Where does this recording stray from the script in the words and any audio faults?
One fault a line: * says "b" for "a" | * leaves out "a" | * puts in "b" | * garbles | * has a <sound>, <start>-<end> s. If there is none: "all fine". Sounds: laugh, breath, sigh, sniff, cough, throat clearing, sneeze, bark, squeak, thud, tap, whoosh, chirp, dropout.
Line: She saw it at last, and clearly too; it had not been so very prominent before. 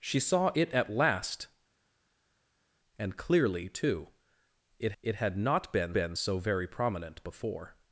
* puts in "it"
* puts in "been"